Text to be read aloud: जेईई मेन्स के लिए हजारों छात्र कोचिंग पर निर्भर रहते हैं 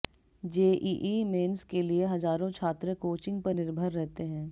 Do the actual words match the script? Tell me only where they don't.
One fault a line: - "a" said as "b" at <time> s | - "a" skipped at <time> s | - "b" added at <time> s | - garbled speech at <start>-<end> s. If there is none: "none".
none